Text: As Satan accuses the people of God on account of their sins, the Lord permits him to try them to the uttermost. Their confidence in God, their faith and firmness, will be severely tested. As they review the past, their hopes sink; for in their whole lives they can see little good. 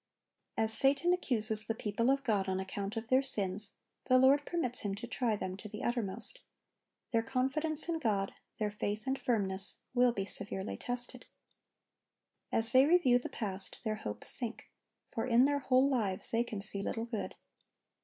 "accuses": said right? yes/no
yes